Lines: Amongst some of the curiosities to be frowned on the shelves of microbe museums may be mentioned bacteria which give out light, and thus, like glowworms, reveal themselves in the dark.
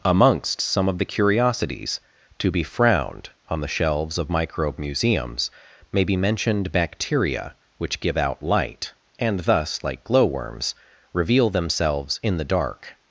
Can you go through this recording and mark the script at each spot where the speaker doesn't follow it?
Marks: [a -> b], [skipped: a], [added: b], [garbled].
Amongst some of the curiosities to be frowned on the shelves of microbe museums may be mentioned bacteria which give out light, and thus, like glowworms, reveal themselves in the dark.